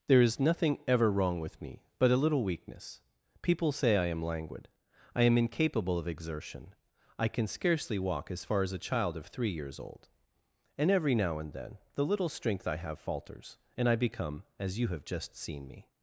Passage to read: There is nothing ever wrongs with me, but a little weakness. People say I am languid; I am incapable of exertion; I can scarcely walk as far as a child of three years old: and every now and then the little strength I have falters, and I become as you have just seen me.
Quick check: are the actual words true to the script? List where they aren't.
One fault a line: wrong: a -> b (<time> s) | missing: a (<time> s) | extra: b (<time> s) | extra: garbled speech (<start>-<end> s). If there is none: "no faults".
wrong: wrongs -> wrong (1.1 s)